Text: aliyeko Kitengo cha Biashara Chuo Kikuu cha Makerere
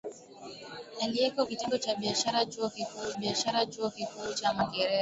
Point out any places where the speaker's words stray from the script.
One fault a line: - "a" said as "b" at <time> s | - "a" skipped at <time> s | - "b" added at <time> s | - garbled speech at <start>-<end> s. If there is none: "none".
- "Biashara Chuo Kikuu" added at 3.1 s